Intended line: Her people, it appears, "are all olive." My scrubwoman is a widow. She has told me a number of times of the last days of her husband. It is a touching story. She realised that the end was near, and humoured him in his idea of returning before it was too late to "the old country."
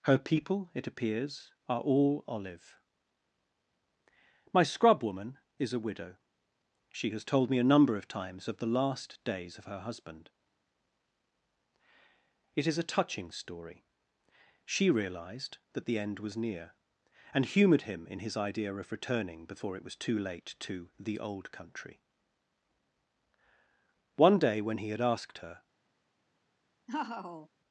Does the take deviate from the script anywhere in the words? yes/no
yes